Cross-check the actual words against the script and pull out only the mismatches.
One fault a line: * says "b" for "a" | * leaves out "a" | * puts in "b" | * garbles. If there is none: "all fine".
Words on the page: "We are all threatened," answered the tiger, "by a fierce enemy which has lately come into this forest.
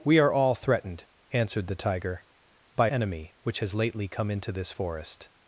* leaves out "a fierce"